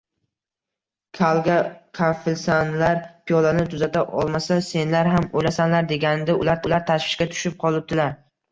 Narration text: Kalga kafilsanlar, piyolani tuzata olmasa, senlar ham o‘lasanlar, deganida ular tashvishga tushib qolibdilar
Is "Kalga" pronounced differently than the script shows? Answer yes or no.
no